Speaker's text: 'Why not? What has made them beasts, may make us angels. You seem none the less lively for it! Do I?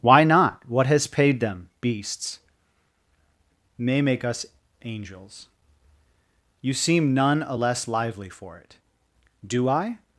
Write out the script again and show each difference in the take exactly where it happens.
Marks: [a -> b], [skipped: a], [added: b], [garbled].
'Why not? What has [made -> paid] them beasts, may make us angels. You seem none [the -> a] less lively for it! Do I?